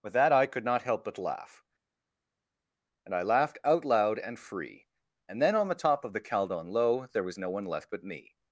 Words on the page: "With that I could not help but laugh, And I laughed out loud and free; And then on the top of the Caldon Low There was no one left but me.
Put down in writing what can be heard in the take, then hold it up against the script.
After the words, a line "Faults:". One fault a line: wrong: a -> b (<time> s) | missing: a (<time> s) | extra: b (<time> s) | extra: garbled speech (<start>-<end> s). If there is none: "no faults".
"With that I could not help but laugh, And I laughed out loud and free; And then on the top of the Caldon Low There was no one left but me.
Faults:
no faults